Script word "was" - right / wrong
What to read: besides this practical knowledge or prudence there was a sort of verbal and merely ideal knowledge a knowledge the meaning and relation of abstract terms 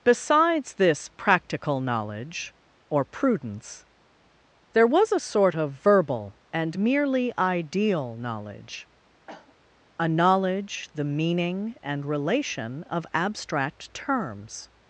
right